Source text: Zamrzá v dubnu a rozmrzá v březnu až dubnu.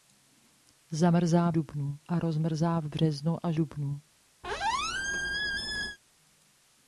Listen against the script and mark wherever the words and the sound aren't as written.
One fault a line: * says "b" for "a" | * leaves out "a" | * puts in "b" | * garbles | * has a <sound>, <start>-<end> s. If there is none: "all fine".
* has a squeak, 4.4-6.0 s